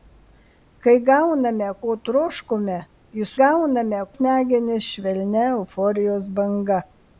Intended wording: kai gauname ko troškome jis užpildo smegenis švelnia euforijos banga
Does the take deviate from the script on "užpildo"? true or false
true